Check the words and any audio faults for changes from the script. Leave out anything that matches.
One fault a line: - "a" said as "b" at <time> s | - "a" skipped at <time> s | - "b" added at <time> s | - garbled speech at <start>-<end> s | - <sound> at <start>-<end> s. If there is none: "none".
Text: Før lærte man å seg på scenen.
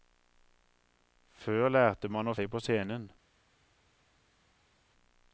none